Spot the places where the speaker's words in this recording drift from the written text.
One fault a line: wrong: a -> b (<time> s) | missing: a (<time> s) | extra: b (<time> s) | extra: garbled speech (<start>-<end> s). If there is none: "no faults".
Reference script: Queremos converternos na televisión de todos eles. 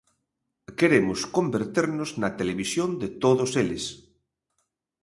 no faults